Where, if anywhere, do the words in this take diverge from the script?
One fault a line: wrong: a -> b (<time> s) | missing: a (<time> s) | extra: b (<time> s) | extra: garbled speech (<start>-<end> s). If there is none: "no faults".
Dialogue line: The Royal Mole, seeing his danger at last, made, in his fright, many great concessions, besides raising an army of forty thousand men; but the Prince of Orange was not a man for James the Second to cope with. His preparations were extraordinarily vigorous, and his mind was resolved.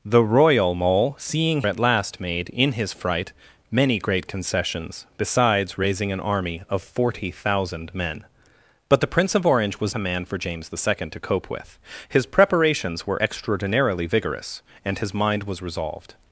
missing: his danger (1.6 s)
missing: not (9.9 s)